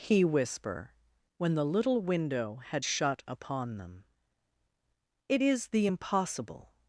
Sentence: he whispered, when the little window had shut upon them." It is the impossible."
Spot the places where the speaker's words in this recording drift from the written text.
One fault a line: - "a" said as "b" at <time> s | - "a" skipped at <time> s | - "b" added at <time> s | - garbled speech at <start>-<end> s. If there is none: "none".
- "whispered" said as "whisper" at 0.2 s